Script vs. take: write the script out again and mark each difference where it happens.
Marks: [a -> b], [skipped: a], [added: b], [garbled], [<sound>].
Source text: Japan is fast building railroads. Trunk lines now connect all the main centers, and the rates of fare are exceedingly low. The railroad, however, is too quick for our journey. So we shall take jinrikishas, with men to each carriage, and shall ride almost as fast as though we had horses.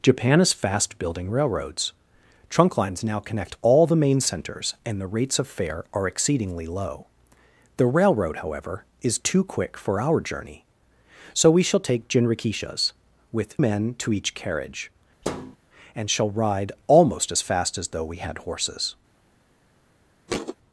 Japan is fast building railroads. Trunk lines now connect all the main centers, and the rates of fare are exceedingly low. The railroad, however, is too quick for our journey. So we shall take jinrikishas, with men to each carriage, [thud] and shall ride almost as fast as though we had horses. [thud]